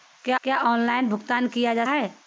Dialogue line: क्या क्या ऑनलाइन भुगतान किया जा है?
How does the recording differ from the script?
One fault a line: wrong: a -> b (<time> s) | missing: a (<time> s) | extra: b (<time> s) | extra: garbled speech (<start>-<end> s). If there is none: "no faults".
no faults